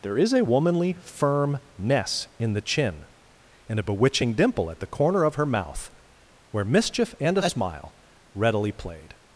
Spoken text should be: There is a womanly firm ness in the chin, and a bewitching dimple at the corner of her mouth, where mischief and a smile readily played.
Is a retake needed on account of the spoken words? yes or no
no